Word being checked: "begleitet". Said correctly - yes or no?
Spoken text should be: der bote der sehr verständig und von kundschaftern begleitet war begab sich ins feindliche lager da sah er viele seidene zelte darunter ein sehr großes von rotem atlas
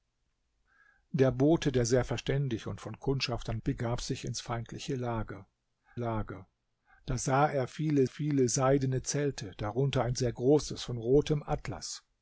no